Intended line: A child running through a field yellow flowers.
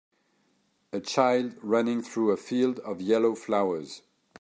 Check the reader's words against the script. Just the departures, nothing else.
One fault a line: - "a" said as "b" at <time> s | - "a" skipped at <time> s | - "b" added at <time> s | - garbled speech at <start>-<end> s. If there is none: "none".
- "of" added at 2.8 s